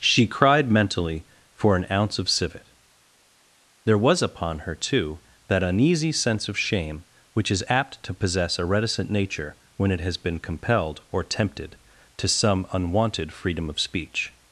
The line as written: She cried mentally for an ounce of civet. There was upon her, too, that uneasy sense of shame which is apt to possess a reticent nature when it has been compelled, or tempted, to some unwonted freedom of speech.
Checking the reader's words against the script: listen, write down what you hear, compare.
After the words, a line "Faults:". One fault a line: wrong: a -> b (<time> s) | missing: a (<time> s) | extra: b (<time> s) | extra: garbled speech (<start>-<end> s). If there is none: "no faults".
She cried mentally for an ounce of civet. There was upon her, too, that uneasy sense of shame which is apt to possess a reticent nature when it has been compelled, or tempted, to some unwonted freedom of speech.
Faults:
no faults